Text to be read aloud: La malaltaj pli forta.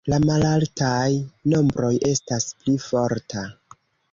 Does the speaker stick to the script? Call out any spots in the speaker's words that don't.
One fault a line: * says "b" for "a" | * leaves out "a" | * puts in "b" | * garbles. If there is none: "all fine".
* puts in "nombroj estas"